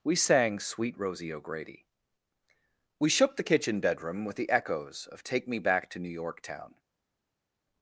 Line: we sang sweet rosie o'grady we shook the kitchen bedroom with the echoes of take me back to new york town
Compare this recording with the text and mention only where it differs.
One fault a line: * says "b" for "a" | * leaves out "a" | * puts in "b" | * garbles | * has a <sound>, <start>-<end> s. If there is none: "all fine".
all fine